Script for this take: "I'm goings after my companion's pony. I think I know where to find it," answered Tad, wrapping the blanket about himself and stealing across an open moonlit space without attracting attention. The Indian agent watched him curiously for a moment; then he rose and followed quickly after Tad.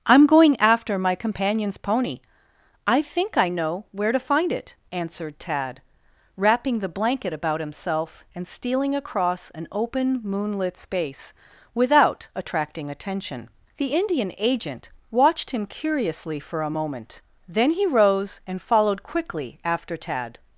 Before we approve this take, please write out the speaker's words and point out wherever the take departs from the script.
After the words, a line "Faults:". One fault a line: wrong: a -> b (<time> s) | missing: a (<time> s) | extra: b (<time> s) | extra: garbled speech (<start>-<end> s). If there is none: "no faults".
"I'm going after my companion's pony. I think I know where to find it," answered Tad, wrapping the blanket about himself and stealing across an open moonlit space without attracting attention. The Indian agent watched him curiously for a moment; then he rose and followed quickly after Tad.
Faults:
wrong: goings -> going (0.2 s)